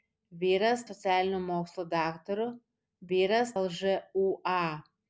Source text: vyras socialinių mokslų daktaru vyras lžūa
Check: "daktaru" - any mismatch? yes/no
no